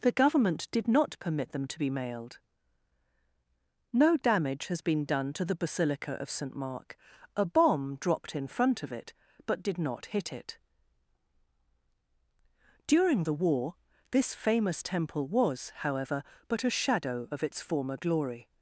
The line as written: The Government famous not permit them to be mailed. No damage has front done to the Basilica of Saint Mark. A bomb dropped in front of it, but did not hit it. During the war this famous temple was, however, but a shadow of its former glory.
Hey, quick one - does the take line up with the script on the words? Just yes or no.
no